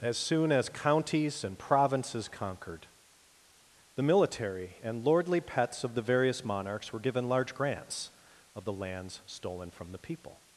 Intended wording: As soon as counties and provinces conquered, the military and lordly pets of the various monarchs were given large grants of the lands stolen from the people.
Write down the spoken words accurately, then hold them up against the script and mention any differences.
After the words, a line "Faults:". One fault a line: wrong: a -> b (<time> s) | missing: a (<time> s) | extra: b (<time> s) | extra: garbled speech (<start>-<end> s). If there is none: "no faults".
As soon as counties and provinces conquered, the military and lordly pets of the various monarchs were given large grants of the lands stolen from the people.
Faults:
no faults